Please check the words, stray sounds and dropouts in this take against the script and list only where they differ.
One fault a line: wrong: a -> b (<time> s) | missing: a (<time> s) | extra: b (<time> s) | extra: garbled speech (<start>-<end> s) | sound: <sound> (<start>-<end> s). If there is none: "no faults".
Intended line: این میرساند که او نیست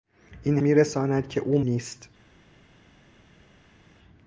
no faults